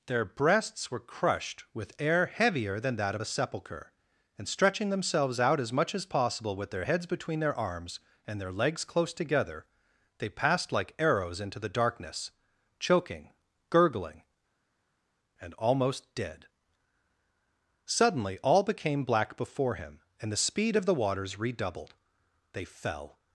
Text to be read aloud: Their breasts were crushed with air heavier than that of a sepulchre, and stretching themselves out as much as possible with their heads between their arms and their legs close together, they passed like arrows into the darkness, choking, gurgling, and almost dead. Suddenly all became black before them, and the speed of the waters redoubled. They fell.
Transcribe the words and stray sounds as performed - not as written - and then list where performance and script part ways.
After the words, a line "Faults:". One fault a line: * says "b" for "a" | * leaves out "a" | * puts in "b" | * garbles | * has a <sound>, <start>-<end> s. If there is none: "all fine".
Their breasts were crushed with air heavier than that of a sepulchre, and stretching themselves out as much as possible with their heads between their arms and their legs close together, they passed like arrows into the darkness, choking, gurgling, and almost dead. Suddenly all became black before him, and the speed of the waters redoubled. They fell.
Faults:
* says "him" for "them"